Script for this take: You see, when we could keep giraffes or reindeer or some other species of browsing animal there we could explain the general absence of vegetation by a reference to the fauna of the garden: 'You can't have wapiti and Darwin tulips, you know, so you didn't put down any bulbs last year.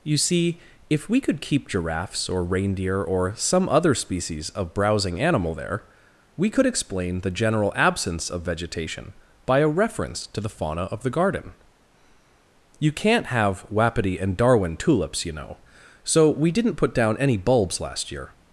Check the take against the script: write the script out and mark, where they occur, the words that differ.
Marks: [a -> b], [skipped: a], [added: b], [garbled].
You see, [when -> if] we could keep giraffes or reindeer or some other species of browsing animal there we could explain the general absence of vegetation by a reference to the fauna of the garden: 'You can't have wapiti and Darwin tulips, you know, so [you -> we] didn't put down any bulbs last year.